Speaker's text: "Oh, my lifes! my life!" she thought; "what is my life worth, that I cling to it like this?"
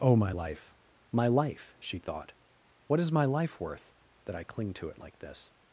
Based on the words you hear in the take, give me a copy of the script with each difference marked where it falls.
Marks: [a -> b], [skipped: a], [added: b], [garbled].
"Oh, my [lifes! -> life] my life!" she thought; "what is my life worth, that I cling to it like this?"